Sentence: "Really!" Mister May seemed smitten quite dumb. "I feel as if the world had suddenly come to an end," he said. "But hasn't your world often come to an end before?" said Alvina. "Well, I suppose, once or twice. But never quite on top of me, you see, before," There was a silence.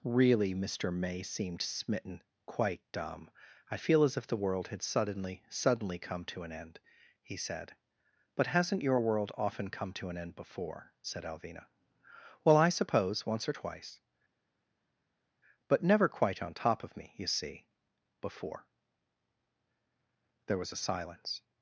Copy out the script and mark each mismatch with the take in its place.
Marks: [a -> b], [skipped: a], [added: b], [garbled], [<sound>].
"Really!" Mister May seemed smitten quite dumb. "I feel as if the world had suddenly [added: suddenly] come to an end," he said. "But hasn't your world often come to an end before?" said Alvina. "Well, I suppose, once or twice. But never quite on top of me, you see, before," There was a silence.